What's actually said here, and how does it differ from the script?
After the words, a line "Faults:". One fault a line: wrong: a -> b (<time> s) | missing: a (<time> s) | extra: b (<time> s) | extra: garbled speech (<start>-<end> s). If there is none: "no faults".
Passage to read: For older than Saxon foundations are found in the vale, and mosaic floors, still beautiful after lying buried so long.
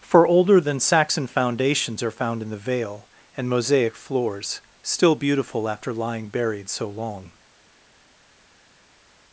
For older than Saxon foundations are found in the vale, and mosaic floors, still beautiful after lying buried so long.
Faults:
no faults